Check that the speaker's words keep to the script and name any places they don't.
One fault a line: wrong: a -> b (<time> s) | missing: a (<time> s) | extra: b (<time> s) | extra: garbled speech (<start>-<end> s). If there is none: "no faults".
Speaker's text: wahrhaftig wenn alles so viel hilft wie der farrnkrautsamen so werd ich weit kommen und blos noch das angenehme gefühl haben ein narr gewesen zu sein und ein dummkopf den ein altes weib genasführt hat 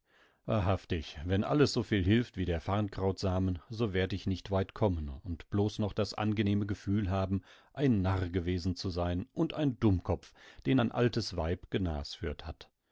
extra: nicht (4.2 s)